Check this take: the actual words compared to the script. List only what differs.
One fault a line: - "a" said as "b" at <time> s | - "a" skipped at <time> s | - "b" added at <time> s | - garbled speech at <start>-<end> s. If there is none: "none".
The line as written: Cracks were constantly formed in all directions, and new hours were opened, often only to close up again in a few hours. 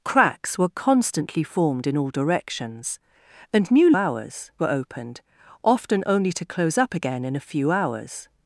none